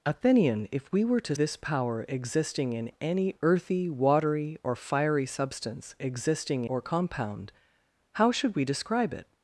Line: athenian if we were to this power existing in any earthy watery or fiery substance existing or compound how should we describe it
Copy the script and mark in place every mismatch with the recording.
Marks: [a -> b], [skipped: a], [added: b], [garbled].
athenian if we were to this power existing in any earthy watery or fiery substance existing or compound how should we describe it